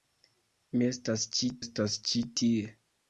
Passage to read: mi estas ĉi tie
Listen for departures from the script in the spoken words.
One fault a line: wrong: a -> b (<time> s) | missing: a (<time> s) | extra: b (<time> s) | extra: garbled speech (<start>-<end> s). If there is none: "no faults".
extra: estas ĉi (1.6 s)